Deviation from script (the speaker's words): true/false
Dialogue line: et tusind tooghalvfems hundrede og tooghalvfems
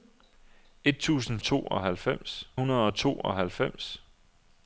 false